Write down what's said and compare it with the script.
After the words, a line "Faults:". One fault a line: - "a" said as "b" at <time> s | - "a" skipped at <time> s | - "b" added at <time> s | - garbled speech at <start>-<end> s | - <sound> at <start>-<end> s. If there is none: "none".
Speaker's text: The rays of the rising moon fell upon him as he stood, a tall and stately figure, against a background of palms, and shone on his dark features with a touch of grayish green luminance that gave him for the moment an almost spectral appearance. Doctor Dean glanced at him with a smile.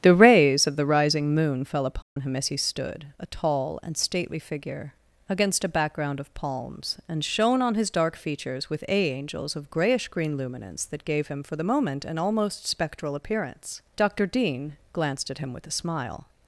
The rays of the rising moon fell upon him as he stood, a tall and stately figure, against a background of palms, and shone on his dark features with a angels of grayish green luminance that gave him for the moment an almost spectral appearance. Doctor Dean glanced at him with a smile.
Faults:
- dropout at 2.0-2.2 s
- "touch" said as "angels" at 9.1 s